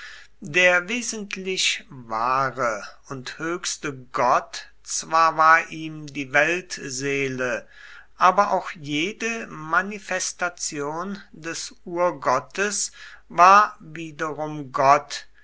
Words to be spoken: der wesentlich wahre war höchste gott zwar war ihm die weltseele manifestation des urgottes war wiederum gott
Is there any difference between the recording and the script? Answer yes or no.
yes